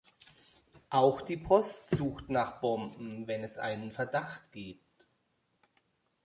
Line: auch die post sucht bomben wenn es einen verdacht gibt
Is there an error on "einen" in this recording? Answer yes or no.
no